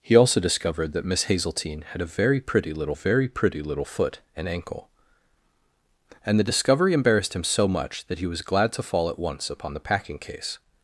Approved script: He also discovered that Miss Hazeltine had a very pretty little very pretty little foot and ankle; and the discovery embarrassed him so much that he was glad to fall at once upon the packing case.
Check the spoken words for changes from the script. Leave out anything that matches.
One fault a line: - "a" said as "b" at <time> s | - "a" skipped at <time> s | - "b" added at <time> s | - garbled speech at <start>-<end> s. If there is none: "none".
none